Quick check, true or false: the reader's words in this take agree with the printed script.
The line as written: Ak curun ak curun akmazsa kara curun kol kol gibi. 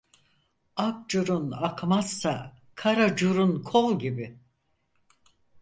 false